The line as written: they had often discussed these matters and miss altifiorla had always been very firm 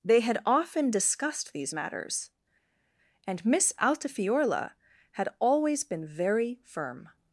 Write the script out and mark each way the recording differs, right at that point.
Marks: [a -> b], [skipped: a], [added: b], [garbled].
they had often discussed these matters and miss altifiorla had always been very firm